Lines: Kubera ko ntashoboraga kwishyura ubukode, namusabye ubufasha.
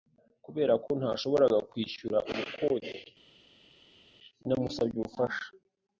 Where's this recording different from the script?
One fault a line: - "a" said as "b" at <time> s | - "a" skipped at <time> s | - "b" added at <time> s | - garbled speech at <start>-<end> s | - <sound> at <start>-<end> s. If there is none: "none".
none